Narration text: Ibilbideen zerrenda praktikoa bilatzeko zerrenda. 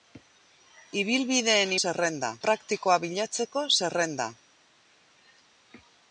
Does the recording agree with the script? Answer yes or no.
yes